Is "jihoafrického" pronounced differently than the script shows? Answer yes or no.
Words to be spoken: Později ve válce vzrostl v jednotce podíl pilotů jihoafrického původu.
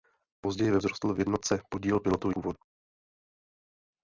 yes